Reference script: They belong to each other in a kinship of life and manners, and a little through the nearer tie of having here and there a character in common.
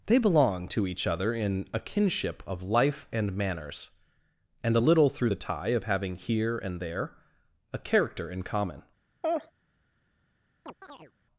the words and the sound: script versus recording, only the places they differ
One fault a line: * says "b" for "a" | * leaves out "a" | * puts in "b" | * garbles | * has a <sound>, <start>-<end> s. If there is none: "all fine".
* leaves out "nearer"
* has a laugh, 9.2-9.5 s
* has a chirp, 10.7-11.1 s